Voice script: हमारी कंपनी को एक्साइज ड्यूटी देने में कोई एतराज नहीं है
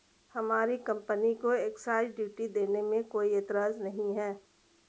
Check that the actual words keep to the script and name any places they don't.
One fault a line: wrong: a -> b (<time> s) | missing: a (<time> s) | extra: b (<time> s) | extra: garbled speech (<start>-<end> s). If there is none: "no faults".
no faults